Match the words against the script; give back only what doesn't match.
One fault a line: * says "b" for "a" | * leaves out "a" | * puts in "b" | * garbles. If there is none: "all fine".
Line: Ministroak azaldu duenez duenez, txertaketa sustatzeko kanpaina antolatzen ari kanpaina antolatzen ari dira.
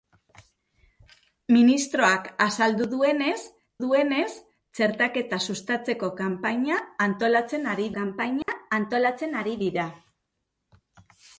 all fine